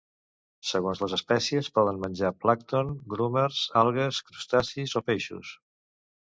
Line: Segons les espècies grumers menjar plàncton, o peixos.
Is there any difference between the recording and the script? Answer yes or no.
yes